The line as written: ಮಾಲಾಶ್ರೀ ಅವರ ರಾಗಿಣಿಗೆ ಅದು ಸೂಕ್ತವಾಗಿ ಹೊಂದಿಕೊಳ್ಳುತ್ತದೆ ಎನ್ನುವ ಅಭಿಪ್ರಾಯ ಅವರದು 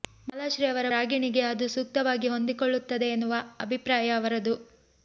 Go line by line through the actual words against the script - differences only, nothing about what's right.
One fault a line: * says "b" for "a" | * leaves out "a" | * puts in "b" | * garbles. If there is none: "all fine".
all fine